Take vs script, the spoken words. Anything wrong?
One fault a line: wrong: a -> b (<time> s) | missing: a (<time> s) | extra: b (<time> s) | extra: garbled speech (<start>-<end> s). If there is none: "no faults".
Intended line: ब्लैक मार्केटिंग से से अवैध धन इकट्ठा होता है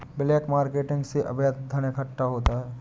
missing: से (1.2 s)